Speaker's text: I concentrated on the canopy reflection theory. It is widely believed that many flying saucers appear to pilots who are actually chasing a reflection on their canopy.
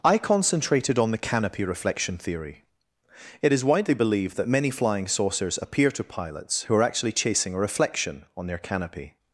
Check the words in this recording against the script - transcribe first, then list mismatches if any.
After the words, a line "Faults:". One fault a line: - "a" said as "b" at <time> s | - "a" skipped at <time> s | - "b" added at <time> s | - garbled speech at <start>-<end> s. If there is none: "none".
I concentrated on the canopy reflection theory. It is widely believed that many flying saucers appear to pilots who are actually chasing a reflection on their canopy.
Faults:
none